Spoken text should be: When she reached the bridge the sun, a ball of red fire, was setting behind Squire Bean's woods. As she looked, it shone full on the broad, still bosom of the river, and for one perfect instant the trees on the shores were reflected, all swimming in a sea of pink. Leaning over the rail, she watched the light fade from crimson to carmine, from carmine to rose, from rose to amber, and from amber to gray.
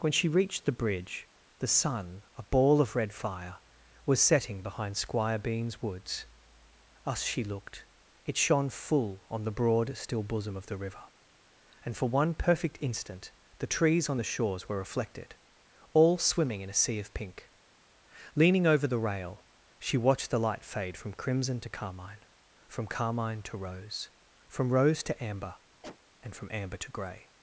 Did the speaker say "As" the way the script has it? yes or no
no